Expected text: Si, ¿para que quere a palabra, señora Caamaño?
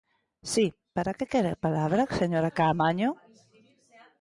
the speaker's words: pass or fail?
pass